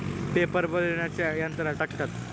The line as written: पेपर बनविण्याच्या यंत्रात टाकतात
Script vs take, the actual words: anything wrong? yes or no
no